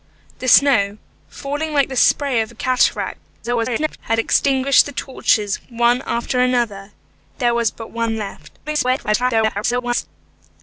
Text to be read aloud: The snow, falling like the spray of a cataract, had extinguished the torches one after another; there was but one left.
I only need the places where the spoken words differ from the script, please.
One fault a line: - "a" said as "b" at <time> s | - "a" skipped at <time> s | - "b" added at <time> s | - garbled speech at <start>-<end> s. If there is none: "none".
- garbled speech at 3.4-4.0 s
- garbled speech at 8.7-10.1 s